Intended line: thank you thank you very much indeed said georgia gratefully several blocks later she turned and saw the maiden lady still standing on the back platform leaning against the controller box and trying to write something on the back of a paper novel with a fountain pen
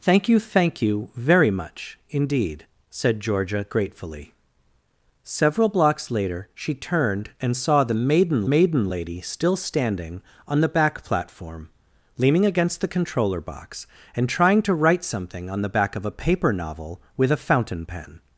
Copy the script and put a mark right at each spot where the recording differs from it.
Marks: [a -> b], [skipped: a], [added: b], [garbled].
thank you thank you very much indeed said georgia gratefully several blocks later she turned and saw the maiden [added: maiden] lady still standing on the back platform leaning against the controller box and trying to write something on the back of a paper novel with a fountain pen